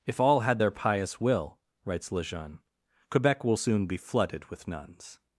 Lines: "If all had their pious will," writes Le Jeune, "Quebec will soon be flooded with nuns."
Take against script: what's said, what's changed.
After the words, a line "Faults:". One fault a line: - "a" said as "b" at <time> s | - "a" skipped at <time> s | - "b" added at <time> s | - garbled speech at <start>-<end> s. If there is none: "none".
"If all had their pious will," writes Le Jeune, "Quebec will soon be flooded with nuns."
Faults:
none